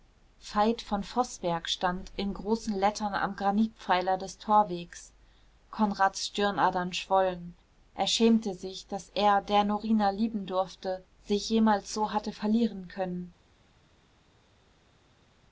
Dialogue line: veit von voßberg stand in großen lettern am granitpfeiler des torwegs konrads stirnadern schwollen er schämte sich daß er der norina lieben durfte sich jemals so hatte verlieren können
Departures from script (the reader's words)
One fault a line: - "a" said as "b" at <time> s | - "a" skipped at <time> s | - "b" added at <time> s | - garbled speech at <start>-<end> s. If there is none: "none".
none